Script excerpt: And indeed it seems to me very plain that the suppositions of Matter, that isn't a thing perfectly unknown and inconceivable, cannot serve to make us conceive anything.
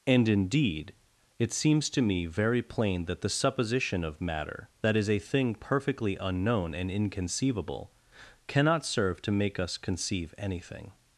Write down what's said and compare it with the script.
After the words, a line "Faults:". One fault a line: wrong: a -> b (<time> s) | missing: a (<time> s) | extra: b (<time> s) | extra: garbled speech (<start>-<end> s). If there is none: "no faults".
And indeed it seems to me very plain that the supposition of Matter, that is a thing perfectly unknown and inconceivable, cannot serve to make us conceive anything.
Faults:
wrong: suppositions -> supposition (3.3 s)
wrong: isn't -> is (5.0 s)